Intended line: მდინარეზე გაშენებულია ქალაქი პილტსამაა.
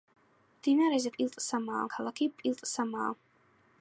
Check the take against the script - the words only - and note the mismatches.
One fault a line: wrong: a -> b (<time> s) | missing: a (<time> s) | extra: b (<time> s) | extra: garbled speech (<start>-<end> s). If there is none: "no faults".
wrong: გაშენებულია -> პილტსამაა (1.2 s)